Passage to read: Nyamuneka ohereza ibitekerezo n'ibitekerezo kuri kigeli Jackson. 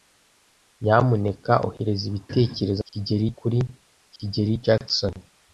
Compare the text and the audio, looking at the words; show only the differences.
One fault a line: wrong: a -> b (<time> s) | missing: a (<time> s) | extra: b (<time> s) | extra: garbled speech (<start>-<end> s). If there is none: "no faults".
wrong: n'ibitekerezo -> kigeli (2.9 s)